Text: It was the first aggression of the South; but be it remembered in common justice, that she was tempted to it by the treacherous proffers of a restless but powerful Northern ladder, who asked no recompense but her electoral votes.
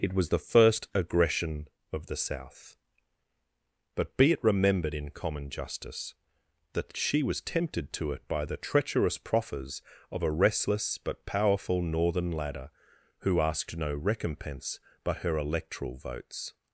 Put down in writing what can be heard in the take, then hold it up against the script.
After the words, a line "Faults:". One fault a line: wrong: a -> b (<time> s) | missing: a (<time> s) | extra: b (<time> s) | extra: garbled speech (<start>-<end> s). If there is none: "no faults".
It was the first aggression of the South; but be it remembered in common justice, that she was tempted to it by the treacherous proffers of a restless but powerful Northern ladder, who asked no recompense but her electoral votes.
Faults:
no faults